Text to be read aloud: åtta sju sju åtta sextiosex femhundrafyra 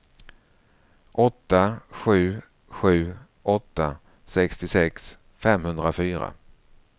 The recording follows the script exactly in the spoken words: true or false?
true